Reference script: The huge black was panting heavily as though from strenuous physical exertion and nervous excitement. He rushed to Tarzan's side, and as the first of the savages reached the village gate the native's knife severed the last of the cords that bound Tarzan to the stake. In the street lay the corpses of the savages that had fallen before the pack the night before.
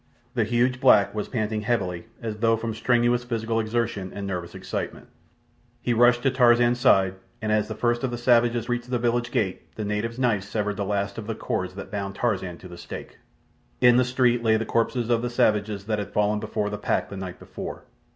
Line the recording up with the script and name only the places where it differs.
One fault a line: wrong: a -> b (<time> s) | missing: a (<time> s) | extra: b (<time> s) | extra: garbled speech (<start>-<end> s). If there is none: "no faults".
no faults